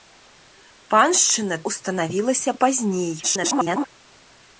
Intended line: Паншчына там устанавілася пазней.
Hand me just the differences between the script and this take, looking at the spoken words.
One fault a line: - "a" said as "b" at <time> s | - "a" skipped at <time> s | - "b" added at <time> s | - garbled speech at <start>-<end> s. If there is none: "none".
- "там" skipped at 1.6 s
- garbled speech at 3.2-3.9 s